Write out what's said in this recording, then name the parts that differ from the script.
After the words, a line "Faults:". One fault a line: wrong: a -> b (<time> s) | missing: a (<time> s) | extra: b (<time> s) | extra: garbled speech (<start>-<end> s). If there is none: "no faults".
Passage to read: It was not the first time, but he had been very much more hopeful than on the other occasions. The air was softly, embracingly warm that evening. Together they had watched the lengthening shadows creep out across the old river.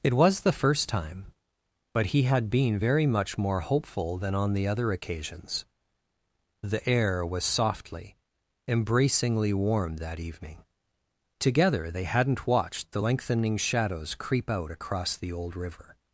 It was the first time, but he had been very much more hopeful than on the other occasions. The air was softly, embracingly warm that evening. Together they hadn't watched the lengthening shadows creep out across the old river.
Faults:
missing: not (0.4 s)
wrong: had -> hadn't (12.0 s)